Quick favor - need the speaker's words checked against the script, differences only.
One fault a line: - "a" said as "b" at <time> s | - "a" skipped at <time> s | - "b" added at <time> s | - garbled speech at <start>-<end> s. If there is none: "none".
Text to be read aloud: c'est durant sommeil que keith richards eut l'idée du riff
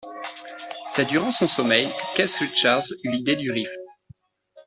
- "son" added at 1.3 s